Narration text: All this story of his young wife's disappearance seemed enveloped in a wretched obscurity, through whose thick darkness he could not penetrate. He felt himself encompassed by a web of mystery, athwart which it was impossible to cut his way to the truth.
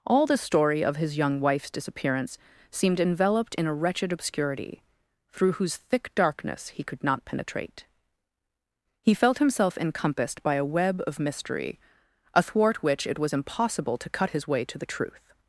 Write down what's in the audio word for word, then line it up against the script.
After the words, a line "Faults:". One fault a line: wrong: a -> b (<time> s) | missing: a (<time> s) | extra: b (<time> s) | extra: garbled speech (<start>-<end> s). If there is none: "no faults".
All the story of his young wife's disappearance seemed enveloped in a wretched obscurity, through whose thick darkness he could not penetrate. He felt himself encompassed by a web of mystery, athwart which it was impossible to cut his way to the truth.
Faults:
wrong: this -> the (0.2 s)